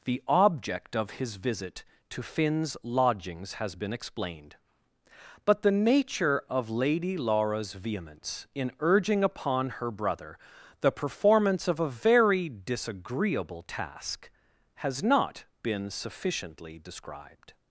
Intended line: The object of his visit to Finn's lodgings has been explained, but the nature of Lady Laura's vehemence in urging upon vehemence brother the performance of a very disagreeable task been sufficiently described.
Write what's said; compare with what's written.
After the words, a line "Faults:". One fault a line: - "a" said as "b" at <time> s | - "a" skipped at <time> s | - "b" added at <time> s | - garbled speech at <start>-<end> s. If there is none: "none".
The object of his visit to Finn's lodgings has been explained, but the nature of Lady Laura's vehemence in urging upon her brother the performance of a very disagreeable task has not been sufficiently described.
Faults:
- "vehemence" said as "her" at 9.7 s
- "has not" added at 14.8 s